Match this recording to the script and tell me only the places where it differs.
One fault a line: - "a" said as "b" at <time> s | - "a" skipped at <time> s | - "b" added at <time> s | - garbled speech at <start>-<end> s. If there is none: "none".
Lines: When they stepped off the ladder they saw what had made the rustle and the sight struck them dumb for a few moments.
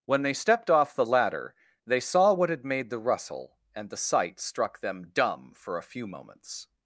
none